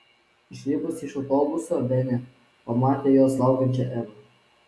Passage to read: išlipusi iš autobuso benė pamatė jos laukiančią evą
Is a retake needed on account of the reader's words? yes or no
no